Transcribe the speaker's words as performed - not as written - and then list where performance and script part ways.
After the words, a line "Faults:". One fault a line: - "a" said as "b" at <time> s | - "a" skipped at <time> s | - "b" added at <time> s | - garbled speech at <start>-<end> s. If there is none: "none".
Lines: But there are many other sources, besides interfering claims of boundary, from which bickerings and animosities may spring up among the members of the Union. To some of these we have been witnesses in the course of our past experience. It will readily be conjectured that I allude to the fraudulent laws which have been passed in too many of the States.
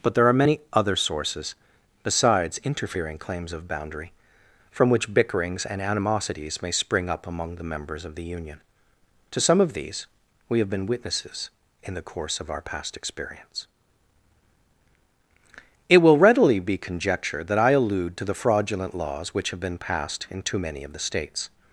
But there are many other sources, besides interfering claims of boundary, from which bickerings and animosities may spring up among the members of the Union. To some of these we have been witnesses in the course of our past experience. It will readily be conjectured that I allude to the fraudulent laws which have been passed in too many of the States.
Faults:
none